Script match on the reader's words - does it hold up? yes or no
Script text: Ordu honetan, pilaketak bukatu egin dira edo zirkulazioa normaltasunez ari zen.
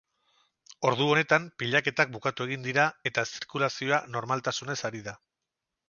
no